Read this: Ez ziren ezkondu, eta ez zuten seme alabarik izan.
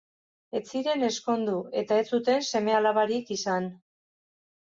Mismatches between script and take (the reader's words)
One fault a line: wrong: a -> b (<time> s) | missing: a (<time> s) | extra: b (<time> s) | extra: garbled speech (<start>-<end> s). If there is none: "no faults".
no faults